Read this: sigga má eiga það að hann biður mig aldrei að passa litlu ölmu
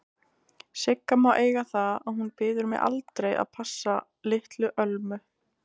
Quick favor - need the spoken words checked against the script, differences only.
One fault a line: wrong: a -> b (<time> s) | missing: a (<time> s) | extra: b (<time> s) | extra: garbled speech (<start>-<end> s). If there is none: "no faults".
wrong: hann -> hún (2.2 s)